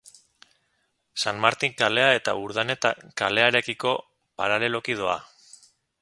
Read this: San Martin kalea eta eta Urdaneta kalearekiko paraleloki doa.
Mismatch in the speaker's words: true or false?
true